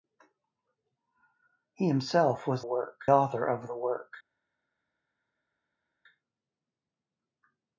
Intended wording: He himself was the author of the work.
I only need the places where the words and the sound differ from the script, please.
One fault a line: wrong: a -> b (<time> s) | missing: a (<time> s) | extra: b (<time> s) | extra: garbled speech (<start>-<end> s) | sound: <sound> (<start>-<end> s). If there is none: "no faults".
wrong: the -> work (2.6 s)